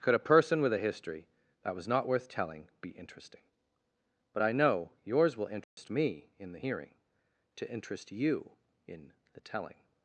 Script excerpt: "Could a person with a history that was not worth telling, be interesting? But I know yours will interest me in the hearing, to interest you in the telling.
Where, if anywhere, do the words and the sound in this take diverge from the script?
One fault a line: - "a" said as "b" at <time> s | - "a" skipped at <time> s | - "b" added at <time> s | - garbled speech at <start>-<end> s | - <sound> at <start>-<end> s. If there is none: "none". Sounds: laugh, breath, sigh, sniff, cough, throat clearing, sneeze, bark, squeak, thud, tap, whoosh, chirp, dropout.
- dropout at 5.6-5.8 s